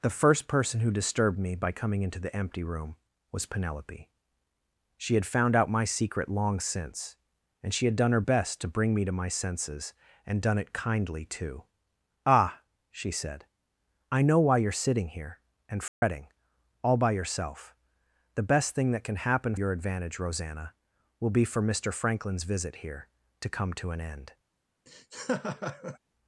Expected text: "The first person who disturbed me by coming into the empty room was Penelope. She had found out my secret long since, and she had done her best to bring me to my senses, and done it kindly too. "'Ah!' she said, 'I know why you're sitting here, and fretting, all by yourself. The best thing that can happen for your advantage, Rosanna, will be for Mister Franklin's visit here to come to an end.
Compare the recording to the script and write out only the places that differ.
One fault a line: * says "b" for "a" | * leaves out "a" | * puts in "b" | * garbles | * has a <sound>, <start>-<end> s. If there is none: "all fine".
* has a dropout, 15.9-16.0 s
* leaves out "for"
* has a laugh, 24.9-26.0 s